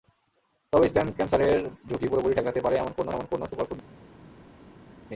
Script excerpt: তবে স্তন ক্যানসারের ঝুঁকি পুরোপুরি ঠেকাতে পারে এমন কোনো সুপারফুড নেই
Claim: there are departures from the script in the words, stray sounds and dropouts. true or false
true